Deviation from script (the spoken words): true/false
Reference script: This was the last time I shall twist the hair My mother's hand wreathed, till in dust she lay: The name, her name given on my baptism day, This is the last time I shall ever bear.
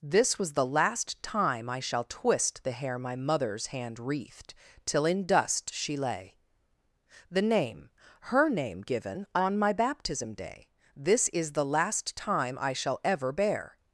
false